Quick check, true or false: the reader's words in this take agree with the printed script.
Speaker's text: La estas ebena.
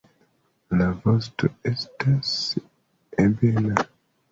false